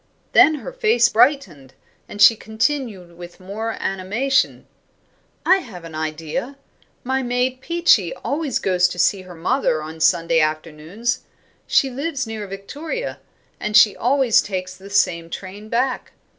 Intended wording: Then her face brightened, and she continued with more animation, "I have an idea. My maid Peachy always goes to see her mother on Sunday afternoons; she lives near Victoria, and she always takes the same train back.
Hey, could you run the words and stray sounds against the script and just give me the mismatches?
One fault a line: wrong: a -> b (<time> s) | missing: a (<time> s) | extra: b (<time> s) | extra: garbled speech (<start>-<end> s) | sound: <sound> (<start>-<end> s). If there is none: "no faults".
no faults